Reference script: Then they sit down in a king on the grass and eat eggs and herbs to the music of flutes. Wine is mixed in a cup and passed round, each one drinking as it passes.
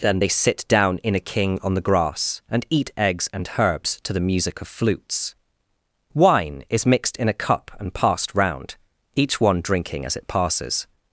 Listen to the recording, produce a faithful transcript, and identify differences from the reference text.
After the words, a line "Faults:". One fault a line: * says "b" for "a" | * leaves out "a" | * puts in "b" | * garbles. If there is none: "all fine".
Then they sit down in a king on the grass and eat eggs and herbs to the music of flutes. Wine is mixed in a cup and passed round, each one drinking as it passes.
Faults:
all fine